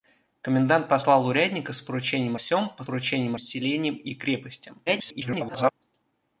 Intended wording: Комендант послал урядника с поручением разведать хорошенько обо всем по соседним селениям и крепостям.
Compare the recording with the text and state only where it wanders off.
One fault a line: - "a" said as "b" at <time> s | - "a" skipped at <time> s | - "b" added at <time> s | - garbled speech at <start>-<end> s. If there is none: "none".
- "разведать хорошенько обо" skipped at 2.4 s
- "соседним" said as "поручением" at 2.8 s
- garbled speech at 4.9-5.7 s